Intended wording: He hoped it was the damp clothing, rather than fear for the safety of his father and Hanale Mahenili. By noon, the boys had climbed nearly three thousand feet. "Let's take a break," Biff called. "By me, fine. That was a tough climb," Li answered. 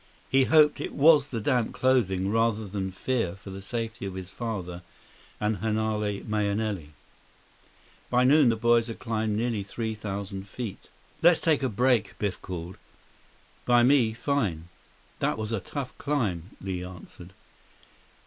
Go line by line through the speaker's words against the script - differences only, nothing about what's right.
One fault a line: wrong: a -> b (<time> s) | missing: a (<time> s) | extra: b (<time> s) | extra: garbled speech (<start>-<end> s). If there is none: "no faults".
no faults